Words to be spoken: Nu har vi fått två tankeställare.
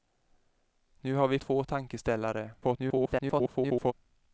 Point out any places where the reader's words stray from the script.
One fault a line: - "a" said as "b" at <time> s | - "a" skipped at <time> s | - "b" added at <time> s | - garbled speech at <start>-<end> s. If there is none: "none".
- "fått" skipped at 1.4 s
- garbled speech at 2.6-3.9 s